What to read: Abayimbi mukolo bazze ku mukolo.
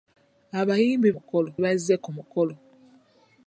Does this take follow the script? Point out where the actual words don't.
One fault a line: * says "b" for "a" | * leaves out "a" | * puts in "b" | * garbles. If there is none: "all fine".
all fine